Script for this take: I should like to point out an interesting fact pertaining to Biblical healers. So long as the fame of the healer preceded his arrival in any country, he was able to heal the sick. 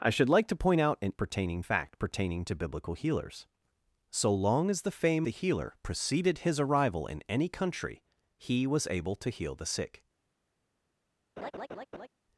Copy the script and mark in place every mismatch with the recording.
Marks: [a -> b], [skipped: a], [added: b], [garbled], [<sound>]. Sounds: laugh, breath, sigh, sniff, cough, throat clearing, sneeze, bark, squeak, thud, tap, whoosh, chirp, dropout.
I should like to point out an [interesting -> pertaining] fact pertaining to Biblical healers. So long as the fame [skipped: of] the healer preceded his arrival in any country, he was able to heal the sick. [laugh]